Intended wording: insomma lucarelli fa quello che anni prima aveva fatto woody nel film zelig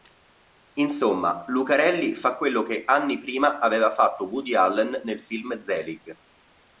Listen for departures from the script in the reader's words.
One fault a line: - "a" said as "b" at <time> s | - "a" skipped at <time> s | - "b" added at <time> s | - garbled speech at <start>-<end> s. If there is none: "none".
- "allen" added at 4.5 s